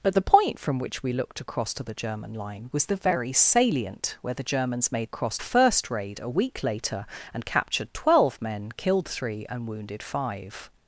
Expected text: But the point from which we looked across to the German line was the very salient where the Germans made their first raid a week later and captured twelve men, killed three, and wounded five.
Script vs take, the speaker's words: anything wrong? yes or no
yes